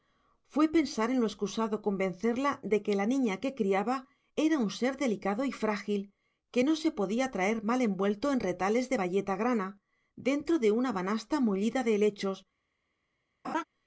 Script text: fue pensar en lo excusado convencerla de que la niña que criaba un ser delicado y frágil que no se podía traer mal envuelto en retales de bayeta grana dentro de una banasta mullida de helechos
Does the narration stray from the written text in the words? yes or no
yes